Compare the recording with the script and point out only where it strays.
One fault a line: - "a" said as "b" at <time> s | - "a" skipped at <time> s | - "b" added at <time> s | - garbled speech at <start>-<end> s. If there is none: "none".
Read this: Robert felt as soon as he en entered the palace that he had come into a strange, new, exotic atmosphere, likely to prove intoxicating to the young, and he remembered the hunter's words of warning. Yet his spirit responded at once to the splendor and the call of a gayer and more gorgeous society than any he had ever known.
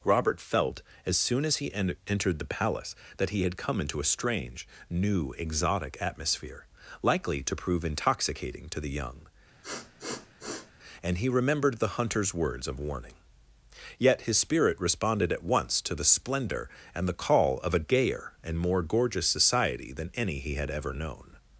none